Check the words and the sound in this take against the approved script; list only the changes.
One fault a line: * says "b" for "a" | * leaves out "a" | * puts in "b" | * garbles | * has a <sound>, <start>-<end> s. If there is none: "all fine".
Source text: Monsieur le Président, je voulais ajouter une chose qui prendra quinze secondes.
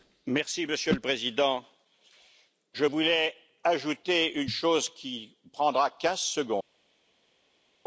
all fine